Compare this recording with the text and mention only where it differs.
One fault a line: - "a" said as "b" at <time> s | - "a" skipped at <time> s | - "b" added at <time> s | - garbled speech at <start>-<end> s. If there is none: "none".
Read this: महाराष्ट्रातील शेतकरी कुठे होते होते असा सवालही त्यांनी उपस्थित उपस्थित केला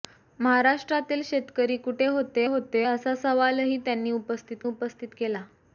none